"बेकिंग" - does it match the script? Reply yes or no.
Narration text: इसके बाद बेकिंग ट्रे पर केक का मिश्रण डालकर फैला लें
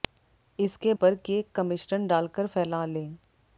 no